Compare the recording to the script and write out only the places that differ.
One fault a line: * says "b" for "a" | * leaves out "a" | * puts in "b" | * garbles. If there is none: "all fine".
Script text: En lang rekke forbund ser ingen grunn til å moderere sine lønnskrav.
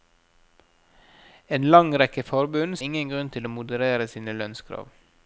* leaves out "ser"